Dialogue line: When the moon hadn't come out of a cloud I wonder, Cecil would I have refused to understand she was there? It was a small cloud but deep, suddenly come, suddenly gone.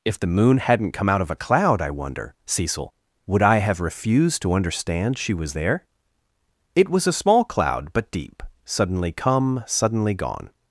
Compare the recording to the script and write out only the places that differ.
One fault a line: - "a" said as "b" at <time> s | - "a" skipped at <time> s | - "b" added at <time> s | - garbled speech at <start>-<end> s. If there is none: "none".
- "When" said as "If" at 0.0 s